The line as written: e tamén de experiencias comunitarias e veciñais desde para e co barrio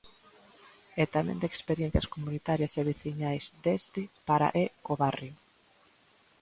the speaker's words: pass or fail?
pass